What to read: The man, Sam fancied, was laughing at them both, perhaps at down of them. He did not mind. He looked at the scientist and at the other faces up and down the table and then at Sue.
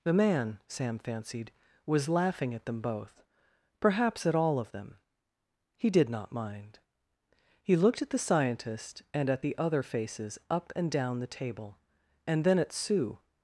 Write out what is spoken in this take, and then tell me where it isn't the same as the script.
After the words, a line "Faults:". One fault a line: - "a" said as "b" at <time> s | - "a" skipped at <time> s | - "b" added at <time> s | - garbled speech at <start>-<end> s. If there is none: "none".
The man, Sam fancied, was laughing at them both, perhaps at all of them. He did not mind. He looked at the scientist and at the other faces up and down the table and then at Sue.
Faults:
- "down" said as "all" at 4.3 s